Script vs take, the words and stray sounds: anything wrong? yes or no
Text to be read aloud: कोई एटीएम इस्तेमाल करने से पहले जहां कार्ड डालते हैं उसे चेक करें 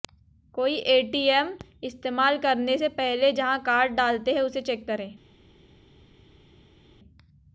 no